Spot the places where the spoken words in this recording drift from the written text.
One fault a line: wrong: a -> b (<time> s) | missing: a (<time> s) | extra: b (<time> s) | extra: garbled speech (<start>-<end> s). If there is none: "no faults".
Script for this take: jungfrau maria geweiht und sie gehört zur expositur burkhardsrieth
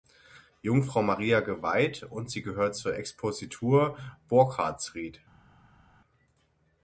no faults